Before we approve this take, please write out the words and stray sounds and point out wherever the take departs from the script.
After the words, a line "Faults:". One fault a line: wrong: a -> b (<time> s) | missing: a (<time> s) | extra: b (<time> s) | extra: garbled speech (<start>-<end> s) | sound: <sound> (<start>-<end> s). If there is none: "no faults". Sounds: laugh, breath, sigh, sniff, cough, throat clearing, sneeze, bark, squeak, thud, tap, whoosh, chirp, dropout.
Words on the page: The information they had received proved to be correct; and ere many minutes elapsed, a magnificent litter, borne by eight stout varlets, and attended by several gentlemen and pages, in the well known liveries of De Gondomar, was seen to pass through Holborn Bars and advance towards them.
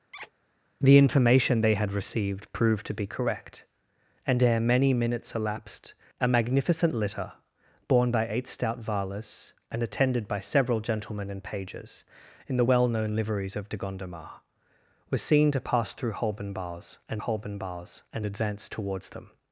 The information they had received proved to be correct; and ere many minutes elapsed, a magnificent litter, borne by eight stout varlets, and attended by several gentlemen and pages, in the well known liveries of De Gondomar, was seen to pass through Holborn Bars and Holborn Bars and advance towards them.
Faults:
sound: squeak (0.1-0.3 s)
extra: Holborn Bars and (17.2 s)